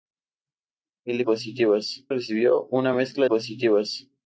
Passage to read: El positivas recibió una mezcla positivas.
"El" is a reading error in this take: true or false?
false